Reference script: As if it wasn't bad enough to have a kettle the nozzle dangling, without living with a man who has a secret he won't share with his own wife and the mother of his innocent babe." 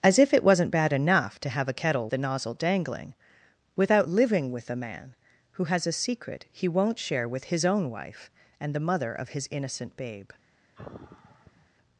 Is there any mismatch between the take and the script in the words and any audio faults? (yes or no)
yes